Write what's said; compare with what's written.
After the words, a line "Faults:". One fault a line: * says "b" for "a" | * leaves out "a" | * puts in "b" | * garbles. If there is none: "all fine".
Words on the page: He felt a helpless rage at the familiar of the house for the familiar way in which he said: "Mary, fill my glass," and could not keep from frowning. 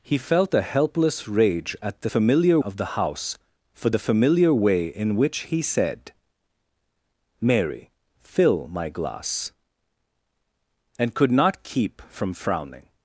He felt a helpless rage at the familiar of the house for the familiar way in which he said: "Mary, fill my glass," and could not keep from frowning.
Faults:
all fine